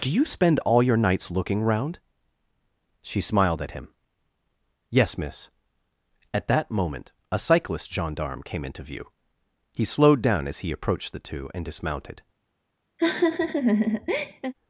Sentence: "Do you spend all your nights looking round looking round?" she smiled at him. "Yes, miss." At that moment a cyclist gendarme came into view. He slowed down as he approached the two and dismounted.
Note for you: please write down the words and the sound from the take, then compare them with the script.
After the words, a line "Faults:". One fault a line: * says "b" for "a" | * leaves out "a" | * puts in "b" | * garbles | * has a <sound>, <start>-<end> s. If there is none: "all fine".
"Do you spend all your nights looking round?" she smiled at him. "Yes, miss." At that moment a cyclist gendarme came into view. He slowed down as he approached the two and dismounted.
Faults:
* leaves out "looking round"
* has a laugh, 13.0-14.5 s